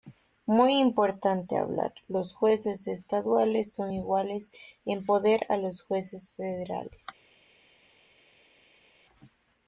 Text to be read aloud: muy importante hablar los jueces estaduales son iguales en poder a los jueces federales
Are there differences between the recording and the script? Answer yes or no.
no